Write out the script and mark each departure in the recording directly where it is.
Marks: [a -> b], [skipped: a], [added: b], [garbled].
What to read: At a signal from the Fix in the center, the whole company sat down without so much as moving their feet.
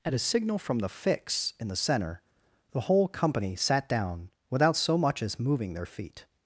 At a signal from the Fix in the center, the whole company sat down without so much as moving their feet.